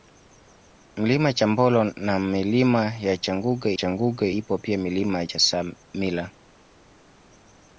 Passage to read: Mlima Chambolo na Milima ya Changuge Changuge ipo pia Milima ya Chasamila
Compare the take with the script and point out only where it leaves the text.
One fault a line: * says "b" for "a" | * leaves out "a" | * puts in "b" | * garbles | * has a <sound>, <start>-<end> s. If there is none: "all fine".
all fine